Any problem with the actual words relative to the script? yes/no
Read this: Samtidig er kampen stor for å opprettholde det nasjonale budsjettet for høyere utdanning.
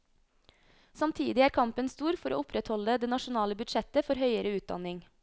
no